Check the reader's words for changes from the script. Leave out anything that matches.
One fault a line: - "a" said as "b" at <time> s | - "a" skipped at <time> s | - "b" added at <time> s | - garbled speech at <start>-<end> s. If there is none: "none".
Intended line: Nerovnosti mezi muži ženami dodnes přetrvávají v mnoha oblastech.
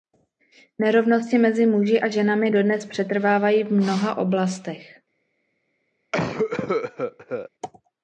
- "a" added at 2.0 s